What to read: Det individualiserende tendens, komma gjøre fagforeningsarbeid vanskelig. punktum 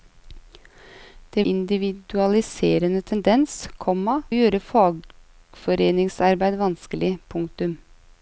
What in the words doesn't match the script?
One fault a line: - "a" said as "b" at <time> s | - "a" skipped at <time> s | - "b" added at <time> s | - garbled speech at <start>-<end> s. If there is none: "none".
none